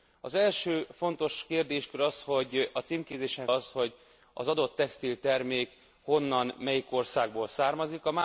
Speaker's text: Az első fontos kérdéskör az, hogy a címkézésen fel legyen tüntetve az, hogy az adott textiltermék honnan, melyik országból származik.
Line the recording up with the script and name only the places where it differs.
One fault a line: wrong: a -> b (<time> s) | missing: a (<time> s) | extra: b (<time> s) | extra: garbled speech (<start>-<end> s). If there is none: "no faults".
missing: fel legyen tüntetve (3.5 s)